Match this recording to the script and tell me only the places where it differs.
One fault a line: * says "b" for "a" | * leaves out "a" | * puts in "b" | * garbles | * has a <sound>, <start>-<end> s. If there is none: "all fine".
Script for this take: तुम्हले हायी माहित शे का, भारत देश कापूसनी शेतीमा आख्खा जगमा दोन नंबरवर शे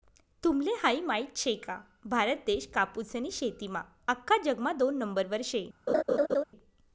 * has a laugh, 5.9-6.4 s